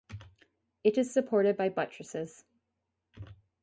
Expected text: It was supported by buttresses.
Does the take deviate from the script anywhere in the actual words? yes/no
yes